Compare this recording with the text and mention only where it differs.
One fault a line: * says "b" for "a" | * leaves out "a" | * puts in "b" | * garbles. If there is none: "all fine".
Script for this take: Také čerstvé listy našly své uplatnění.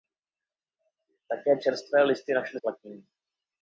* leaves out "své"